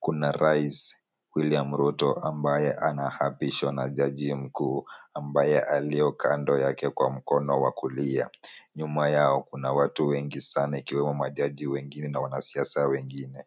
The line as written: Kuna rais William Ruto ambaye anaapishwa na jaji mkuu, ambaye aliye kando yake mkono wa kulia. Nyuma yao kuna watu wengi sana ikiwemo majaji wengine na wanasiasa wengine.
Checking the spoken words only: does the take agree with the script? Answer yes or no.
no